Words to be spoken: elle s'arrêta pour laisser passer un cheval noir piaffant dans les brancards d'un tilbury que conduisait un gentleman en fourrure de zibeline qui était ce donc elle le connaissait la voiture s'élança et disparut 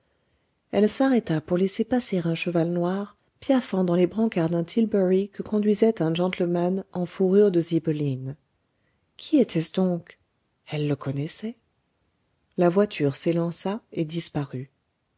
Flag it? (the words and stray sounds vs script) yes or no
no